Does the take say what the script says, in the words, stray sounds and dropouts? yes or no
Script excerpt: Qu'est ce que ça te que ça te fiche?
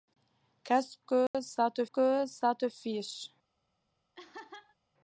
no